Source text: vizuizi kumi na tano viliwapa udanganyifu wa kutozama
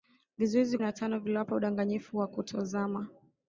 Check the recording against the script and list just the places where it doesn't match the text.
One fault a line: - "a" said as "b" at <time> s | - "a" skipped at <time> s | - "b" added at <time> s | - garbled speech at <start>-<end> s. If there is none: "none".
- "kumi" skipped at 0.8 s